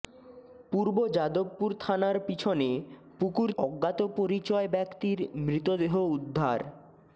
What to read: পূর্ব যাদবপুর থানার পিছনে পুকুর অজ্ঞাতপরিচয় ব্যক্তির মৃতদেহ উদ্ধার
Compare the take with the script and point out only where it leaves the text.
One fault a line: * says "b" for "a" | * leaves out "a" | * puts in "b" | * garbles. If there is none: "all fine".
all fine